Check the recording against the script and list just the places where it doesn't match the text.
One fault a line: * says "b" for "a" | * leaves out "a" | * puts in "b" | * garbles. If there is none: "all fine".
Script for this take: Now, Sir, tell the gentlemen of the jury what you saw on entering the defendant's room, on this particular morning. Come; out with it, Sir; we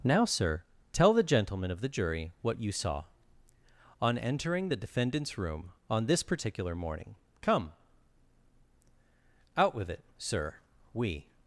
all fine